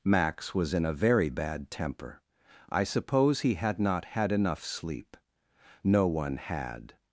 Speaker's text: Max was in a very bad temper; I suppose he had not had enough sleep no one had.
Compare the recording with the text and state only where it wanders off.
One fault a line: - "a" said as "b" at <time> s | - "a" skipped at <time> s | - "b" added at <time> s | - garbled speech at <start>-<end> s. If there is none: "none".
none